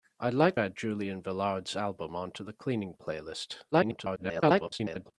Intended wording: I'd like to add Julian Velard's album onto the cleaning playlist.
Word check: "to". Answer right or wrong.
wrong